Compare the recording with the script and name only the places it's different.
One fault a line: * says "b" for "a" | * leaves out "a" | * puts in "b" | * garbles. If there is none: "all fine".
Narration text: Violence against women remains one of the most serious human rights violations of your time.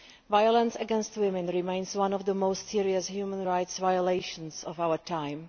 * says "our" for "your"